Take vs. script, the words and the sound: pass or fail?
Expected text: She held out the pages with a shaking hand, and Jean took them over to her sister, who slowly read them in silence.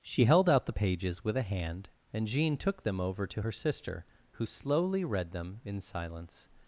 fail